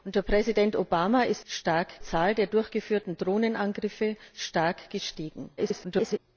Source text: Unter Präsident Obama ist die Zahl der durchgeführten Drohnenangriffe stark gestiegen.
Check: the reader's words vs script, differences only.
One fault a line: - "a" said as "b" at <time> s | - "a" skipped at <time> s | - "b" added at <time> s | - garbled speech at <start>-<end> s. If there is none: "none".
- "die" said as "stark" at 1.4 s
- garbled speech at 5.6-6.2 s